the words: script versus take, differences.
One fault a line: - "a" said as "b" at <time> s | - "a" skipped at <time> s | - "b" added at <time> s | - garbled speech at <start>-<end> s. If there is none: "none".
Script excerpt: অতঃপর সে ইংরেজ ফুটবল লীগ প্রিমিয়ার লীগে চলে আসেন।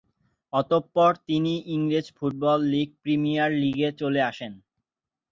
- "সে" said as "তিনি" at 1.3 s